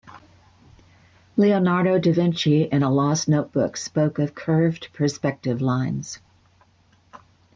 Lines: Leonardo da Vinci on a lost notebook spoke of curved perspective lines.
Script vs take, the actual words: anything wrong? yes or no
yes